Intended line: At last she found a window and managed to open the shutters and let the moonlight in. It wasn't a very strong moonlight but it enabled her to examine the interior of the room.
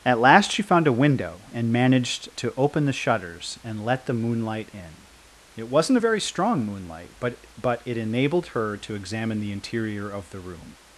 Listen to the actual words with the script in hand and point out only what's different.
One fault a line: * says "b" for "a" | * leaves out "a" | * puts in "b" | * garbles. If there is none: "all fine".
* puts in "but"